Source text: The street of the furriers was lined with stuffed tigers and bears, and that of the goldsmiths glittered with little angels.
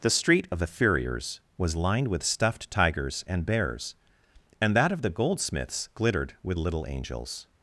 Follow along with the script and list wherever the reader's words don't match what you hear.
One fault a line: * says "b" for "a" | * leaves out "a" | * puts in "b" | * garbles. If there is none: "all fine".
all fine